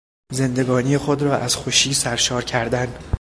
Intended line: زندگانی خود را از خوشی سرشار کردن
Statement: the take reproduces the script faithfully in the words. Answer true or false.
true